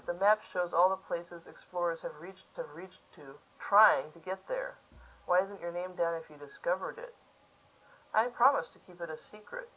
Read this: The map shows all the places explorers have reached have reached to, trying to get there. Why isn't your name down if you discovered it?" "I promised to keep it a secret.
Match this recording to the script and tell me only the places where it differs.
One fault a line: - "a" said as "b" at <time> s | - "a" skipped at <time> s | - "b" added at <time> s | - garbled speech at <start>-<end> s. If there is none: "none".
none